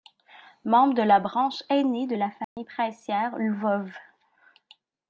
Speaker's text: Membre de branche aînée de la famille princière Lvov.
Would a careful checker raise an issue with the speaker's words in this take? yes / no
yes